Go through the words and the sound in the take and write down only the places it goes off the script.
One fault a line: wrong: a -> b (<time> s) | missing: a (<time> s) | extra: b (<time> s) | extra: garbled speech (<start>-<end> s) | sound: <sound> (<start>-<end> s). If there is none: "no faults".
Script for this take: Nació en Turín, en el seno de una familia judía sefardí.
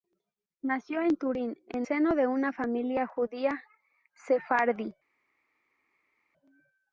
missing: el (1.9 s)